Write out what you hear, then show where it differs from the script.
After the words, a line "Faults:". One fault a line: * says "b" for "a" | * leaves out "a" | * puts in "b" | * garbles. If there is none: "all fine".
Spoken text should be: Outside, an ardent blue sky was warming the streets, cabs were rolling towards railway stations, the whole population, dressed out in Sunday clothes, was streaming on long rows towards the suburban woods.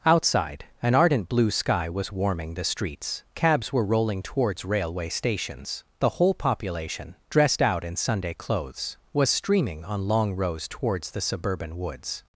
Outside, an ardent blue sky was warming the streets, cabs were rolling towards railway stations, the whole population, dressed out in Sunday clothes, was streaming on long rows towards the suburban woods.
Faults:
all fine